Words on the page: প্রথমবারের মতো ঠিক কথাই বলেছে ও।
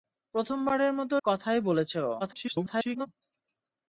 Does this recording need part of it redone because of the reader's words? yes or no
yes